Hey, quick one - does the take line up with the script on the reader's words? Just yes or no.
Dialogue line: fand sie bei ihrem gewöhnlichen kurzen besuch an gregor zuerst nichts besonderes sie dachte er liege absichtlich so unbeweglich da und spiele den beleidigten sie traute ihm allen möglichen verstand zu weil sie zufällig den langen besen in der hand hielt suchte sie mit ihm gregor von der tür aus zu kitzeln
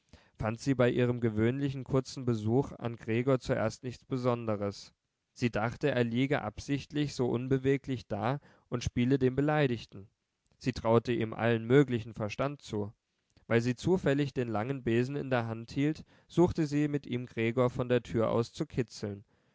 yes